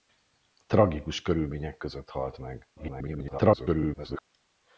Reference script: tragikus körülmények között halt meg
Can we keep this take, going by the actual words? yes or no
no